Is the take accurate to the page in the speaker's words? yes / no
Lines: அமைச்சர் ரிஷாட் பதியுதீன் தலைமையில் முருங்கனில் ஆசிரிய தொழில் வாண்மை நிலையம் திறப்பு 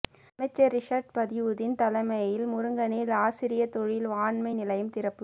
yes